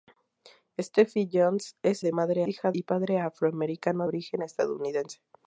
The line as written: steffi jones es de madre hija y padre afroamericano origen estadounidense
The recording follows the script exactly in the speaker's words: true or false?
true